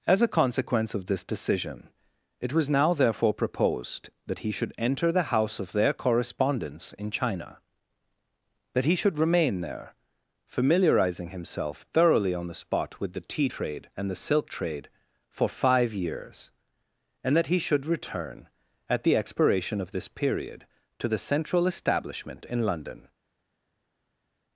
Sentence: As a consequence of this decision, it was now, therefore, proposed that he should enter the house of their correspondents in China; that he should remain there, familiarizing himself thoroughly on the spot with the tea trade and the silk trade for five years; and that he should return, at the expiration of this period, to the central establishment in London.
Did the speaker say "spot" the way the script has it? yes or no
yes